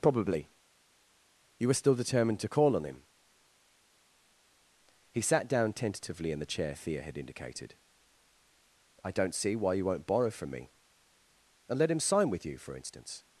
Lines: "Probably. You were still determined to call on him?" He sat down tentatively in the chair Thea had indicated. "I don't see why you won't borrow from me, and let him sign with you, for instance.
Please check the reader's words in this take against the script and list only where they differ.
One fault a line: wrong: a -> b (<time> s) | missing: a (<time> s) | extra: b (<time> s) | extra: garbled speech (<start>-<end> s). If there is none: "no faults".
no faults